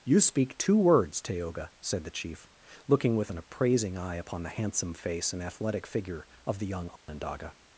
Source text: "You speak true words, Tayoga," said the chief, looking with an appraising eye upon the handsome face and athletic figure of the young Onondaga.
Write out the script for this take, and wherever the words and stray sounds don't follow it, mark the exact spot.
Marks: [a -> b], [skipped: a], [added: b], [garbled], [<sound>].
"You speak [true -> two] words, Tayoga," said the chief, looking with an appraising eye upon the handsome face and athletic figure of the young Onondaga. [dropout]